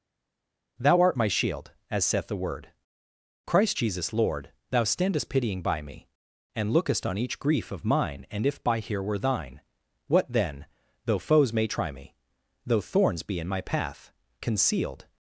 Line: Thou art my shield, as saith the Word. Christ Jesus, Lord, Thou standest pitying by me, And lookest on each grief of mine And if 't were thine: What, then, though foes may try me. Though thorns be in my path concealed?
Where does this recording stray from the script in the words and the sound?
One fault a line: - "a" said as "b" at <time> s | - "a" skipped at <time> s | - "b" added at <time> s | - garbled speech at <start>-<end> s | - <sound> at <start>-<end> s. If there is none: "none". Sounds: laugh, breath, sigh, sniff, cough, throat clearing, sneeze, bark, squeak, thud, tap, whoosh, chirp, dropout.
- "t" said as "by here" at 8.6 s